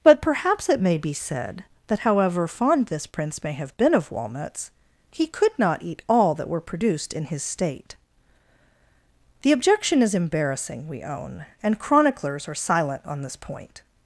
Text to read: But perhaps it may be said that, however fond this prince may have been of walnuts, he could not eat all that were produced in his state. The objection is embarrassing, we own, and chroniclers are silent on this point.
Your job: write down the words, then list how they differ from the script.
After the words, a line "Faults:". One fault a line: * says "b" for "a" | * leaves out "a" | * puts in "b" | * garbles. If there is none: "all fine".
But perhaps it may be said that, however fond this prince may have been of walnuts, he could not eat all that were produced in his state. The objection is embarrassing, we own, and chroniclers are silent on this point.
Faults:
all fine